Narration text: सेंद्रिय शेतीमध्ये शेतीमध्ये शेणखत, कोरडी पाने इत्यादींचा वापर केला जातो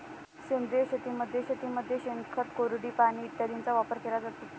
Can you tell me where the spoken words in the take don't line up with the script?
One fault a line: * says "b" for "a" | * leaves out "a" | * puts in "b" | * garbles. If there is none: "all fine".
all fine